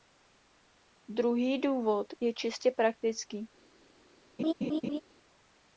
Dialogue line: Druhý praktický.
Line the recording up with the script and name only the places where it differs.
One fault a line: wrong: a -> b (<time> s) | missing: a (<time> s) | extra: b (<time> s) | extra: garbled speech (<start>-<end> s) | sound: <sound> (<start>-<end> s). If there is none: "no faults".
extra: důvod je čistě (1.6 s)
sound: laugh (4.4-5.0 s)